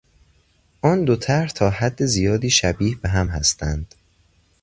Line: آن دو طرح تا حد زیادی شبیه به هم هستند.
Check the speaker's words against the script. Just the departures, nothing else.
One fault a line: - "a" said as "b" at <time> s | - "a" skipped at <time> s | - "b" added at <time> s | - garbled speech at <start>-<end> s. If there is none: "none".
none